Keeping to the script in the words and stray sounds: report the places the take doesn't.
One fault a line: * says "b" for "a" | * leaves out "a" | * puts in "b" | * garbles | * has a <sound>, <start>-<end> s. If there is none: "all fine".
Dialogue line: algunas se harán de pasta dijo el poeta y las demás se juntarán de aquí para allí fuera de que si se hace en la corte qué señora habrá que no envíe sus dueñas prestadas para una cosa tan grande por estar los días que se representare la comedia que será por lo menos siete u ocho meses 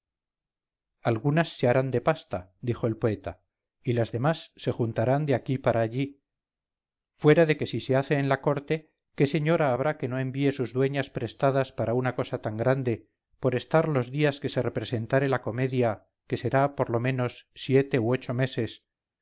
all fine